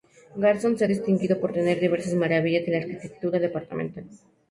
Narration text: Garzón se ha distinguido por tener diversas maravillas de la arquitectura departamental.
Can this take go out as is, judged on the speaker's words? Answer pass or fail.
pass